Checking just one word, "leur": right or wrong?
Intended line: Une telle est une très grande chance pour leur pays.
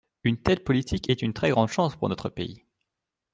wrong